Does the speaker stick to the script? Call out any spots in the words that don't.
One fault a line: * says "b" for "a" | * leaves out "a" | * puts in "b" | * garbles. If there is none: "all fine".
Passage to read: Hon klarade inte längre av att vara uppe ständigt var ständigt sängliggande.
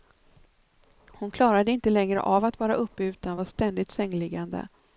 * says "utan" for "ständigt"